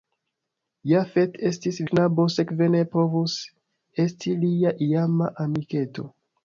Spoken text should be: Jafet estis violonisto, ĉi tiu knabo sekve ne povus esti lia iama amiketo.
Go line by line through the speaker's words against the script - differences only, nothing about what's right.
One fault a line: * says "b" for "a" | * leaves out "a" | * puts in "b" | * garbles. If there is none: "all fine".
* leaves out "violonisto ĉi tiu"